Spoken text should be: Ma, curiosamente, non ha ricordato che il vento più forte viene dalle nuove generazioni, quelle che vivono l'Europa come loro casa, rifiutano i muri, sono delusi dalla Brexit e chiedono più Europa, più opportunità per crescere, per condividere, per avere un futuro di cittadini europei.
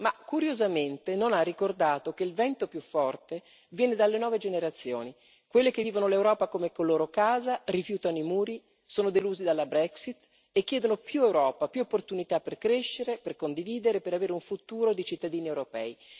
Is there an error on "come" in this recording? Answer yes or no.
no